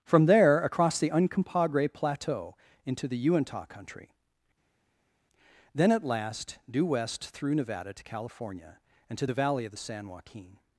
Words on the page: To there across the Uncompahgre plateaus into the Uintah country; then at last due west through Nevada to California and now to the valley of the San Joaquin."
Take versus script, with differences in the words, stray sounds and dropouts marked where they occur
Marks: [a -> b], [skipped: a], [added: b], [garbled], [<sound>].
[To -> From] there across the Uncompahgre [plateaus -> plateau] into the Uintah country; then at last due west through Nevada to California and [skipped: now] to the valley of the San Joaquin."